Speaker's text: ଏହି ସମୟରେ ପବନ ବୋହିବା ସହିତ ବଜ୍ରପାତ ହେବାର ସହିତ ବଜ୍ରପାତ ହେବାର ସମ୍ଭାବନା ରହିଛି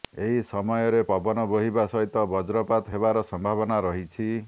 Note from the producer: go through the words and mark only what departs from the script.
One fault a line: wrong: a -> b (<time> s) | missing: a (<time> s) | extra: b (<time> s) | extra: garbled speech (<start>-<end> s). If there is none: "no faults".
missing: ସହିତ ବଜ୍ରପାତ ହେବାର (3.2 s)